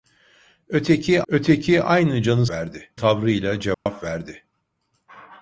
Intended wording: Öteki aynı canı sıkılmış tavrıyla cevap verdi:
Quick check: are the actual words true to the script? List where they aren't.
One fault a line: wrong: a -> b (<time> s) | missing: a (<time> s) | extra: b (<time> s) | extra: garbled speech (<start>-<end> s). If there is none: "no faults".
extra: öteki (1.3 s)
wrong: sıkılmış -> verdi (2.5 s)